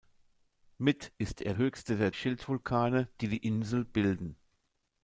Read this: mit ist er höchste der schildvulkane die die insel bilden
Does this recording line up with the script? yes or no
yes